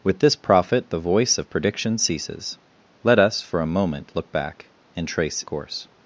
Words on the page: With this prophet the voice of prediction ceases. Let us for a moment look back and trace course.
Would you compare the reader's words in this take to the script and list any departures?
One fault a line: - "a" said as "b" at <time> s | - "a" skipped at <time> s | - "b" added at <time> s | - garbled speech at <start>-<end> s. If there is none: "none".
none